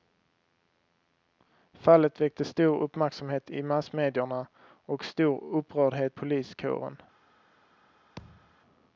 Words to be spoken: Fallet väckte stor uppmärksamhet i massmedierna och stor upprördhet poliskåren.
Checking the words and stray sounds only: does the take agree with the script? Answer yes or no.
no